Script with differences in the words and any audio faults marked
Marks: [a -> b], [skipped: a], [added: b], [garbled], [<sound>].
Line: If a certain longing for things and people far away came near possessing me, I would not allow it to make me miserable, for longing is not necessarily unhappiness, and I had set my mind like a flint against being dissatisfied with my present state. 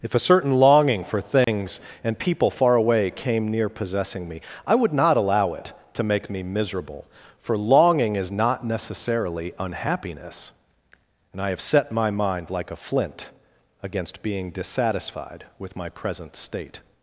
If a certain longing for things [dropout] and people far away came near possessing me, I would not allow it to make me miserable, for longing is not necessarily unhappiness, and I [had -> have] set my mind like a flint against being dissatisfied with my present state.